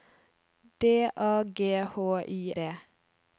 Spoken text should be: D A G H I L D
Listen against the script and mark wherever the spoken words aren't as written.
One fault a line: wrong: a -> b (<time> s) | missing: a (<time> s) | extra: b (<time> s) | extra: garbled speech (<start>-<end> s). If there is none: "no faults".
missing: L (2.5 s)